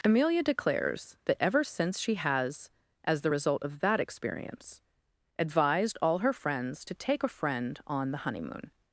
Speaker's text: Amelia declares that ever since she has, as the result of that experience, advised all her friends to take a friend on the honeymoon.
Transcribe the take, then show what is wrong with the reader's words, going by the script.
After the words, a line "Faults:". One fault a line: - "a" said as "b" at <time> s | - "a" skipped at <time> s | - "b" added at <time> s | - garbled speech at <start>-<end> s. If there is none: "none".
Amelia declares that ever since she has, as the result of that experience, advised all her friends to take a friend on the honeymoon.
Faults:
none